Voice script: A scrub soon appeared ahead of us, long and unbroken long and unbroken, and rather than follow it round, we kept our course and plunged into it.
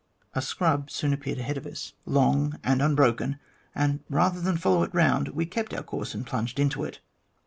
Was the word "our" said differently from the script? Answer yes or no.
no